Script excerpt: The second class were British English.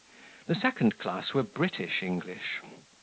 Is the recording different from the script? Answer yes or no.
no